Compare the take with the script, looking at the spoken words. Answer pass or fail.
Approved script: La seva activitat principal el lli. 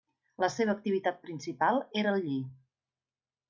fail